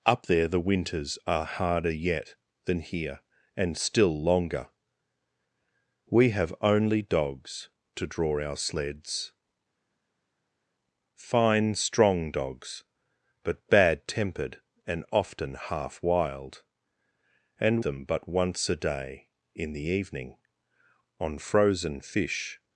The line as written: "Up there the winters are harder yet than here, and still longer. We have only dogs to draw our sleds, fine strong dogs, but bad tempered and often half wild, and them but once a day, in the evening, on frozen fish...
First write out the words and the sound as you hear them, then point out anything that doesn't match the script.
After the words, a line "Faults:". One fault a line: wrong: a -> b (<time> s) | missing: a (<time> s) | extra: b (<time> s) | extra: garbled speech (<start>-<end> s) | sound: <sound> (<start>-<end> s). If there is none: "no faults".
"Up there the winters are harder yet than here, and still longer. We have only dogs to draw our sleds, fine strong dogs, but bad tempered and often half wild, and them but once a day, in the evening, on frozen fish...
Faults:
no faults